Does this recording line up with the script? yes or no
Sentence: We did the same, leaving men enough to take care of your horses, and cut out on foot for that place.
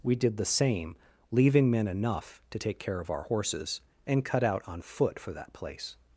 no